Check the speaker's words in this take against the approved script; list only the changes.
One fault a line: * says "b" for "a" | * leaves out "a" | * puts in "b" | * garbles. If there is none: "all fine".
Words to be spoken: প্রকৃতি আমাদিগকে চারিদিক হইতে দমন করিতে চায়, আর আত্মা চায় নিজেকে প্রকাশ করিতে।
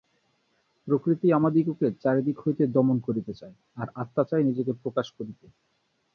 all fine